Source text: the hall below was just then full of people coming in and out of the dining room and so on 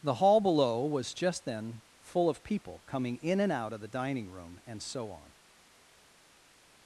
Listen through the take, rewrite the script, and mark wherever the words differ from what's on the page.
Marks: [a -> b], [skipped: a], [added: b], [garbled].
the hall below was just then full of people coming in and out of the dining room and so on